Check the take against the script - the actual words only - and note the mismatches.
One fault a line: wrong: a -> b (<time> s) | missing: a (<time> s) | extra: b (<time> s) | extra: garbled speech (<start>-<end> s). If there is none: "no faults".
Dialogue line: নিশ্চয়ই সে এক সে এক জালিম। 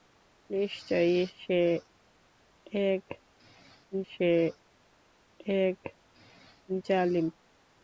no faults